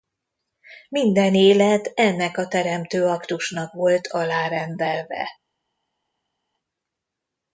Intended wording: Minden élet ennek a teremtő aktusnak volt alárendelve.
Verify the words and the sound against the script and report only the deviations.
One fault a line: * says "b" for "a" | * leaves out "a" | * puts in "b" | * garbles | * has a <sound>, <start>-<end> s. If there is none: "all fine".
all fine